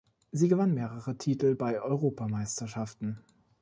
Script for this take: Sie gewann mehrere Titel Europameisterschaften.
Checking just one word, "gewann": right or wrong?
right